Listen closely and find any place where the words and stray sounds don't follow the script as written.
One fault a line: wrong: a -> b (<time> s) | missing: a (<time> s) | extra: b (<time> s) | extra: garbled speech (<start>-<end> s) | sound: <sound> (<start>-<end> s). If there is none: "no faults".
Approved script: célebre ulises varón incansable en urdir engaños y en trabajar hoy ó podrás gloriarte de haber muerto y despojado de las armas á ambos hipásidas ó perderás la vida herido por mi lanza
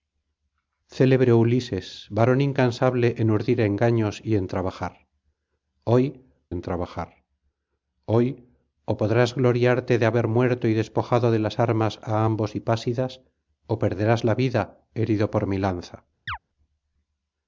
extra: en trabajar hoy (6.5 s)
sound: chirp (16.3-16.4 s)